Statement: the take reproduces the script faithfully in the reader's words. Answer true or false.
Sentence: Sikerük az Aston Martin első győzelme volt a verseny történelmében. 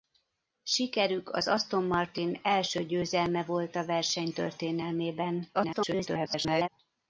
false